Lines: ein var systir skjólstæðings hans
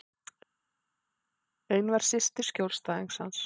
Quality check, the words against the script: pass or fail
pass